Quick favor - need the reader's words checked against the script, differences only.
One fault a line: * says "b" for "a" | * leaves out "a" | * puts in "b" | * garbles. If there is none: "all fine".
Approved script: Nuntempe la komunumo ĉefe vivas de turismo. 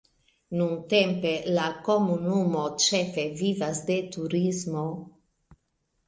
all fine